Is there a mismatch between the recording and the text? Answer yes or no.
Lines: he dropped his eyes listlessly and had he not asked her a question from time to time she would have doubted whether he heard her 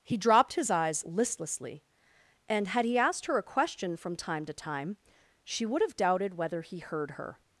yes